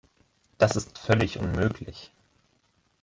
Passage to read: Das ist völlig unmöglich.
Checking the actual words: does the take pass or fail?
pass